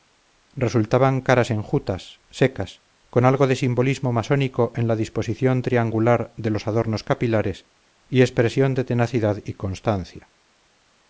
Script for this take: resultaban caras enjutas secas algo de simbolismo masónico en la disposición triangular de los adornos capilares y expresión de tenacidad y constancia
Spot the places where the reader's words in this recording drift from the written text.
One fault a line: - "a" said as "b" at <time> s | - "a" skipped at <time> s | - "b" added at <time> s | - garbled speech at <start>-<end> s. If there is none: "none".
- "con" added at 3.1 s